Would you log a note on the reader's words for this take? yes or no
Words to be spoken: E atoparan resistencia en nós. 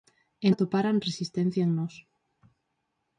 no